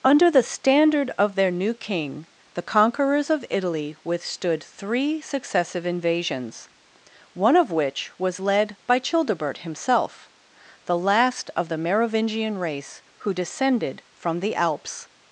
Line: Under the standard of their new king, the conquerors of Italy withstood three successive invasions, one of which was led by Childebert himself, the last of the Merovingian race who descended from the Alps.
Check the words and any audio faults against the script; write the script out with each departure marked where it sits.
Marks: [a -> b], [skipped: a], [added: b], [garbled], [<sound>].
Under the standard of their new king, the conquerors of Italy withstood three successive invasions, one of which was led by Childebert himself, the last of the Merovingian race who descended from the Alps.